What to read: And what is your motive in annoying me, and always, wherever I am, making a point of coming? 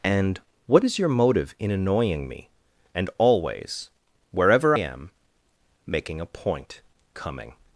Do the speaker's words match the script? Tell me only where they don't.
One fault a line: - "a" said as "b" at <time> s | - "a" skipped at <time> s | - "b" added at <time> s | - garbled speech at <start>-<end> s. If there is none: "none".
- "I" skipped at 4.8 s
- "of" skipped at 6.8 s